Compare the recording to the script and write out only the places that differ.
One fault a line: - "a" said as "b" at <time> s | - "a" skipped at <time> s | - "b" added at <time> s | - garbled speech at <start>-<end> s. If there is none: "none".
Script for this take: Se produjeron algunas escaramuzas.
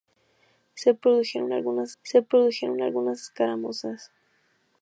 - "se produjeron algunas" added at 2.0 s